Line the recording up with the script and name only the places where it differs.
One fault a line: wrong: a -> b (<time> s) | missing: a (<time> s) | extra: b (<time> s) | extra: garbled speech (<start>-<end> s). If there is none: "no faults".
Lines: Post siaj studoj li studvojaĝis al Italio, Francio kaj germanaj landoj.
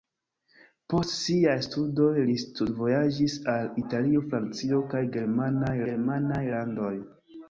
extra: germanaj (5.9 s)